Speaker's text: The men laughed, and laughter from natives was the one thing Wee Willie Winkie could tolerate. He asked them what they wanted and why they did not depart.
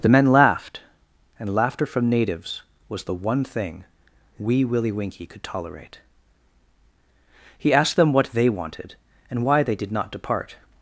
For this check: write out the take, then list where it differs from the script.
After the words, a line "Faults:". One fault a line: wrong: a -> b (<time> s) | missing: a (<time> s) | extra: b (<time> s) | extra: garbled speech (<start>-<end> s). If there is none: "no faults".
The men laughed, and laughter from natives was the one thing Wee Willie Winkie could tolerate. He asked them what they wanted and why they did not depart.
Faults:
no faults